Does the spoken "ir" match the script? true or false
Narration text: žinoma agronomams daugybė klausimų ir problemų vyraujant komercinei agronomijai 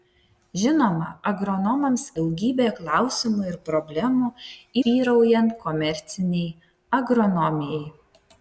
true